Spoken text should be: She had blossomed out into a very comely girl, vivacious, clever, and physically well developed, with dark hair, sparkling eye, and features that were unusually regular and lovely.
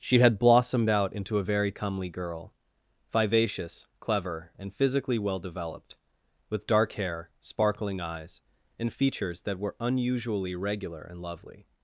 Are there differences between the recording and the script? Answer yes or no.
yes